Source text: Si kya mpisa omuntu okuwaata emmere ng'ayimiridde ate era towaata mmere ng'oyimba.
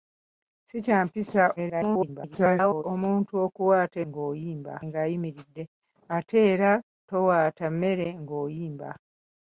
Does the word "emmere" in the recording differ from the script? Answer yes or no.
yes